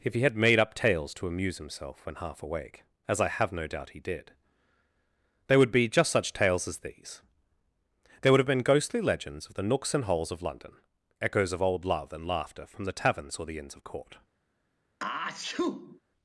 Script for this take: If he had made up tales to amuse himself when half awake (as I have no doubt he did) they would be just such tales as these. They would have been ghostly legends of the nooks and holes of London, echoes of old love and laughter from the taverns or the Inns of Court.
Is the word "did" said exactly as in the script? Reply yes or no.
yes